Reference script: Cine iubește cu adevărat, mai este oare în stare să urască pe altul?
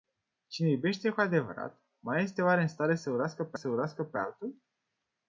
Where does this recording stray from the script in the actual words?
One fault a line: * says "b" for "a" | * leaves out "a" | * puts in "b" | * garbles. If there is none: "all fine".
* puts in "să urască pe"